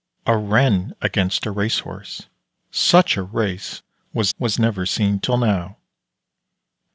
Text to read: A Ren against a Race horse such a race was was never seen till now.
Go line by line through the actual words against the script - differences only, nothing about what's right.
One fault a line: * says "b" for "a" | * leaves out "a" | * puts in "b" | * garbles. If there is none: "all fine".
all fine